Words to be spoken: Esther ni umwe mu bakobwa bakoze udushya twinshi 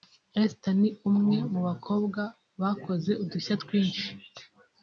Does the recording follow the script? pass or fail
pass